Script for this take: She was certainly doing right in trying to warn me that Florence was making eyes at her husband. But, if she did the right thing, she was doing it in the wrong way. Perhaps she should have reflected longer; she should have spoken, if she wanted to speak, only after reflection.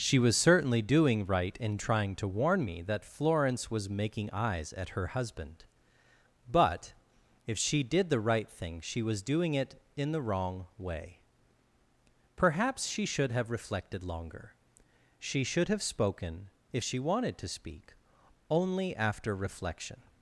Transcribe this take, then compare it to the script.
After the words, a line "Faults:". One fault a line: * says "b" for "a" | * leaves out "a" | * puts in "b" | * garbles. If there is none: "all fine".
She was certainly doing right in trying to warn me that Florence was making eyes at her husband. But, if she did the right thing, she was doing it in the wrong way. Perhaps she should have reflected longer; she should have spoken, if she wanted to speak, only after reflection.
Faults:
all fine